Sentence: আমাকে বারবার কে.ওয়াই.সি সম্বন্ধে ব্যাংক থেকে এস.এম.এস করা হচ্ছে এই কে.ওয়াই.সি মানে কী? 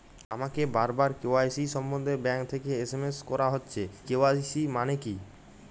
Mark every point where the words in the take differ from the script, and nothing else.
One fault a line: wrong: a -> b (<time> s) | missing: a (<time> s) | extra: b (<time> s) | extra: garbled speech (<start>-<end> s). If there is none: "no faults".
missing: এই (3.8 s)